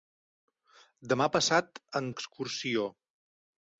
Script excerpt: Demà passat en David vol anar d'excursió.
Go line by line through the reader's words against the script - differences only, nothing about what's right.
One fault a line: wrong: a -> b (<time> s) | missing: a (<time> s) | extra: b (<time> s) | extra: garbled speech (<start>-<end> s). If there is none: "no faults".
missing: David vol anar (2.1 s)